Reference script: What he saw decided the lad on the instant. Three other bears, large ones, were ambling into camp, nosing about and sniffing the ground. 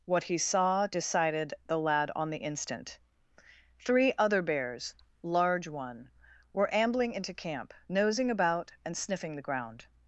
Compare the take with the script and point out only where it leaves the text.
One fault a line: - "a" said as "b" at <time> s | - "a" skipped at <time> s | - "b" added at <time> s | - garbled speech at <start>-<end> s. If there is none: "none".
- "ones" said as "one" at 5.7 s